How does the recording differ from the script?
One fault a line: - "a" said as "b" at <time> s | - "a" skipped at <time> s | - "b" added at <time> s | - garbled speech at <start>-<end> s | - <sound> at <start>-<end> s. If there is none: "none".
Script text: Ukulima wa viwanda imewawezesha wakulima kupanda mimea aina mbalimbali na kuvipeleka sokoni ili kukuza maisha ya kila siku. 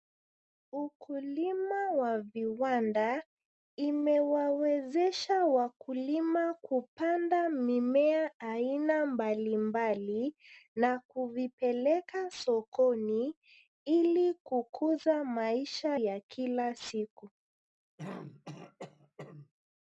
- throat clearing at 18.0-19.5 s